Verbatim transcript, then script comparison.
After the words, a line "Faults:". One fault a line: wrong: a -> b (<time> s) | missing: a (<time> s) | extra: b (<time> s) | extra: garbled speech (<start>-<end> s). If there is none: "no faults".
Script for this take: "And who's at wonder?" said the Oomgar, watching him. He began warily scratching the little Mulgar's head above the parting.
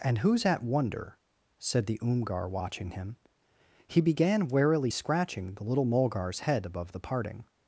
"And who's at wonder?" said the Oomgar, watching him. He began warily scratching the little Mulgar's head above the parting.
Faults:
no faults